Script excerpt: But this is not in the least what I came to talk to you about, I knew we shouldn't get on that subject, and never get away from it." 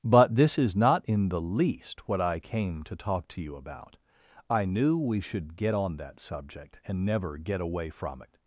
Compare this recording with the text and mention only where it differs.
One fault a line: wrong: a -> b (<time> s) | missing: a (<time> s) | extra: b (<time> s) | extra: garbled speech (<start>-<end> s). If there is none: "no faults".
wrong: shouldn't -> should (5.2 s)